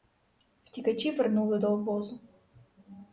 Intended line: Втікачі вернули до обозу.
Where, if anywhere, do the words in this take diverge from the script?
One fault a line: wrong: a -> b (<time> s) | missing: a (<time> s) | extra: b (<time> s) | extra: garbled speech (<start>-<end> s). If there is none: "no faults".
no faults